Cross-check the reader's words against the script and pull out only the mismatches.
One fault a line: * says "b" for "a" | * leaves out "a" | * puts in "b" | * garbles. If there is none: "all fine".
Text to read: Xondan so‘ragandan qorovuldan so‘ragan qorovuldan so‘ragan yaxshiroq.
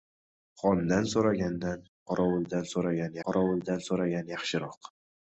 all fine